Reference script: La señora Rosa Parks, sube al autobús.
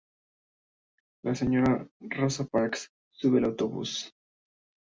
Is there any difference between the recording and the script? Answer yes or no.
no